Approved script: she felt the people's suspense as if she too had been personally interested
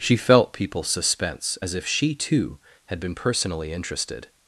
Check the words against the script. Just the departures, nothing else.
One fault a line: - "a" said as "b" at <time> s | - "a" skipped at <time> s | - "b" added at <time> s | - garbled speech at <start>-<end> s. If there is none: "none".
- "the" skipped at 0.5 s